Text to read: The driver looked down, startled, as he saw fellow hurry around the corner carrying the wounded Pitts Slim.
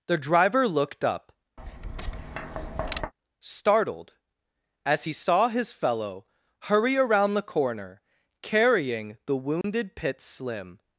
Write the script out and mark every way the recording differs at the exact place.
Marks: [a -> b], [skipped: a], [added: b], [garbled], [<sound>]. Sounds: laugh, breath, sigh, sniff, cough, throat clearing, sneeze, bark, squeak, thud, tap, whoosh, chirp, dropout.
The driver looked [down, -> up] [tap] startled, as he saw [added: his] fellow hurry around the corner carrying the wounded [dropout] Pitts Slim.